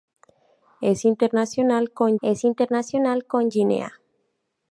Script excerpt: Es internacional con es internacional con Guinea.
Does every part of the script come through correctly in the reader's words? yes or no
yes